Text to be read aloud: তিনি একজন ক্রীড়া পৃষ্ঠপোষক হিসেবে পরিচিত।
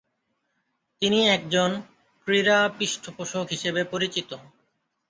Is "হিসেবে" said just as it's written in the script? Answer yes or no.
yes